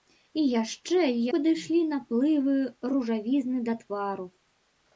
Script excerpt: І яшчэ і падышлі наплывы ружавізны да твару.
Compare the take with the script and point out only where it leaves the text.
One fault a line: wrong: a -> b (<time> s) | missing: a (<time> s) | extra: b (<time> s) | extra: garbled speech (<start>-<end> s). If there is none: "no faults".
no faults